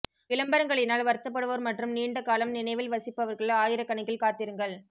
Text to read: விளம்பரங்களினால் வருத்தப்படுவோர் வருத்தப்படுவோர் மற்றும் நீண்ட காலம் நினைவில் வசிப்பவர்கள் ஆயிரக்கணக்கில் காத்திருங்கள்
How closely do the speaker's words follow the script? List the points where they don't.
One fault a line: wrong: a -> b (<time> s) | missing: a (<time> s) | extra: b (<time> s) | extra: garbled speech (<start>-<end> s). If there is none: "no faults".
missing: வருத்தப்படுவோர் (1.6 s)